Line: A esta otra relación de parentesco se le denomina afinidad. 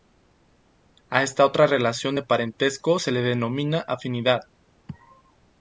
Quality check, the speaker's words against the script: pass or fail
pass